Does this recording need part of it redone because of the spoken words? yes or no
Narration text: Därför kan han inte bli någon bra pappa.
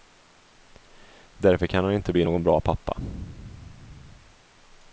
no